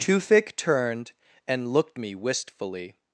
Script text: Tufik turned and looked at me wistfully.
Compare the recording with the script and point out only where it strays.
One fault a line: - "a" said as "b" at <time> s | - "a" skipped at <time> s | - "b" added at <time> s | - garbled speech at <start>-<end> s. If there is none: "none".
- "at" skipped at 2.0 s